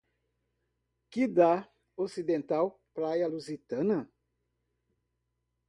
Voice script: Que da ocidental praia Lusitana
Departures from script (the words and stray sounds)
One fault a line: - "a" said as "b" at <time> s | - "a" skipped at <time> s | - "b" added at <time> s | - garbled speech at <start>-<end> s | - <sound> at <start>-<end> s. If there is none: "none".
none